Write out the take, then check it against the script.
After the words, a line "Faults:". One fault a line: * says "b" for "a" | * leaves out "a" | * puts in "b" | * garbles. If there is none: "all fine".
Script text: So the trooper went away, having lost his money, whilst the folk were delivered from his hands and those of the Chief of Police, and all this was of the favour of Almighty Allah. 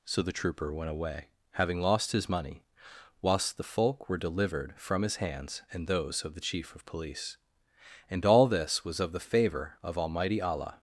So the trooper went away, having lost his money, whilst the folk were delivered from his hands and those of the Chief of Police, and all this was of the favour of Almighty Allah.
Faults:
all fine